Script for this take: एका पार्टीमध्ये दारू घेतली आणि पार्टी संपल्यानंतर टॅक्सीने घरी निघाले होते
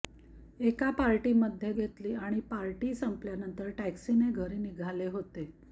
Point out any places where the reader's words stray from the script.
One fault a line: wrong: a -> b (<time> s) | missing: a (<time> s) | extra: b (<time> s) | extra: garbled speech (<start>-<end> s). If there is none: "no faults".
missing: दारू (1.7 s)